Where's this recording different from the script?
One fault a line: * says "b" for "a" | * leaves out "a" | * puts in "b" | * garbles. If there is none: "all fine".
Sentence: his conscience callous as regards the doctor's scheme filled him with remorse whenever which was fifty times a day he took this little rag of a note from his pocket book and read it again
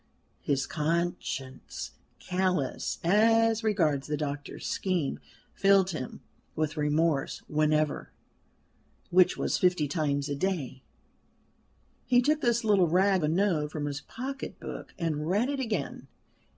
* leaves out "of"